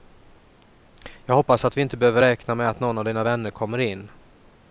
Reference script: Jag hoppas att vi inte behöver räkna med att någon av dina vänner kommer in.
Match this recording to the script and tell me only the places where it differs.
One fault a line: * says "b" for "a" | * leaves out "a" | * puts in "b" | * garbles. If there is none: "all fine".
all fine